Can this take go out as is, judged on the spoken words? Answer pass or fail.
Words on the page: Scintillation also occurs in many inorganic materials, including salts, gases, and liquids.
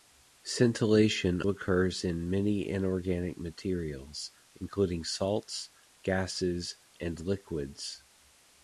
fail